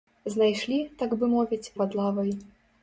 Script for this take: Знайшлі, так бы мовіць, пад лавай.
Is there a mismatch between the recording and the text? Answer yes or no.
no